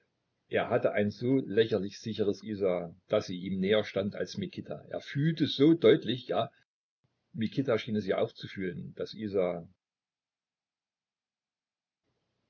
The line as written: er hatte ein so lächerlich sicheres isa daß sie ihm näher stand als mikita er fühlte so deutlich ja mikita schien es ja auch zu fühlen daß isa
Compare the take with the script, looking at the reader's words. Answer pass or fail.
pass